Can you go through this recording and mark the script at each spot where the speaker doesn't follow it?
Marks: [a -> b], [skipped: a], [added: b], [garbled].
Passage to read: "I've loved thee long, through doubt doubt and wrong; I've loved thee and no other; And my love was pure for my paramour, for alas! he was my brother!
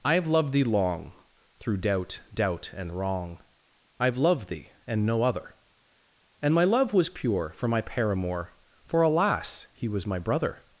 "I've loved thee long, through doubt doubt and wrong; I've loved thee and no other; And my love was pure for my paramour, for alas! he was my brother!